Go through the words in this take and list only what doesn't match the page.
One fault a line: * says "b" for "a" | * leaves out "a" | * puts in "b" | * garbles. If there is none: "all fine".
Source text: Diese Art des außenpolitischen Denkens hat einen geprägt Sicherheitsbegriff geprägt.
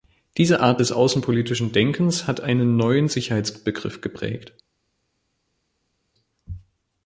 * says "neuen" for "geprägt"